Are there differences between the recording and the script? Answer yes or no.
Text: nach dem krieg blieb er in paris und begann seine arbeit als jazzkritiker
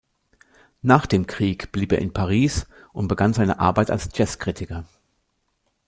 no